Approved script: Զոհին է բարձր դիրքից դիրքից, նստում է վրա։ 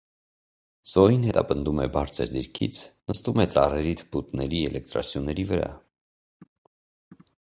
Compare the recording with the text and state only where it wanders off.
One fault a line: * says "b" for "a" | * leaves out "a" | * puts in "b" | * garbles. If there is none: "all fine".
* puts in "հետապնդում"
* leaves out "դիրքից"
* puts in "ծառերի թփուտների էլեկտրասյուների"